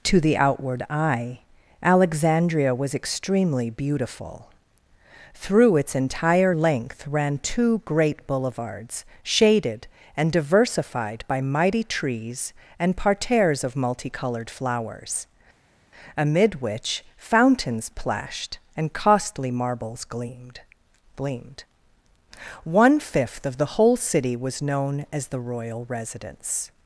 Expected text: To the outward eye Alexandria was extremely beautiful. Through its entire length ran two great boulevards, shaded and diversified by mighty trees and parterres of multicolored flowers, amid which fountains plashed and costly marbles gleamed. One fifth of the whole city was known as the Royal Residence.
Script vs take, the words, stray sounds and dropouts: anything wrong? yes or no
yes